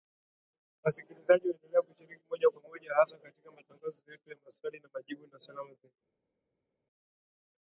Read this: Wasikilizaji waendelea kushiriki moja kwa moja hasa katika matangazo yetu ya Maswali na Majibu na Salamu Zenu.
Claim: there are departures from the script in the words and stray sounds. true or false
false